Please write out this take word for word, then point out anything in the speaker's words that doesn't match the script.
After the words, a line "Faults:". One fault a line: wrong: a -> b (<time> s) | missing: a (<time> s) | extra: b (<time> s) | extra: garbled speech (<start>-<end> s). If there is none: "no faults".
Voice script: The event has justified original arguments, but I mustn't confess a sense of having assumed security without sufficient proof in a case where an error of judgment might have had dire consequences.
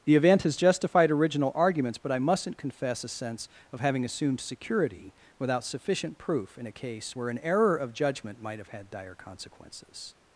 The event has justified original arguments, but I mustn't confess a sense of having assumed security without sufficient proof in a case where an error of judgment might have had dire consequences.
Faults:
no faults